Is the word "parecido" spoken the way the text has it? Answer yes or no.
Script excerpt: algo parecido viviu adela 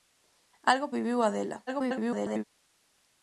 no